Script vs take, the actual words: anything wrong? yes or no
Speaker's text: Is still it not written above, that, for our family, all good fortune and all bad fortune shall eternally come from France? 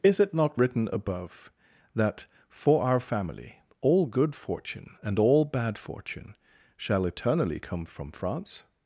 yes